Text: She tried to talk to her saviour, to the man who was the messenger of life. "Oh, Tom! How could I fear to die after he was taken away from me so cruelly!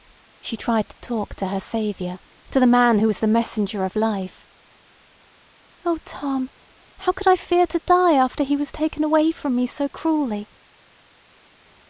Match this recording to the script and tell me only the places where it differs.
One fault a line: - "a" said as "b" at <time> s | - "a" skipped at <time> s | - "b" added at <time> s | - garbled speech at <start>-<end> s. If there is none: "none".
none